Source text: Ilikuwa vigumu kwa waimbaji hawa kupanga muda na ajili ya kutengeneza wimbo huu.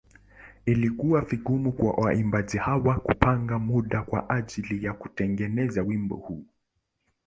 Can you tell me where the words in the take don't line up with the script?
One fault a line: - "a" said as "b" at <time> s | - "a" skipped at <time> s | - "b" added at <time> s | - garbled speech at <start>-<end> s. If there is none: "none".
- "na" said as "kwa" at 4.0 s